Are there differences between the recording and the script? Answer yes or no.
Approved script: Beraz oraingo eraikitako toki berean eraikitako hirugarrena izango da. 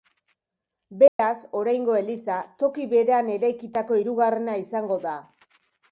yes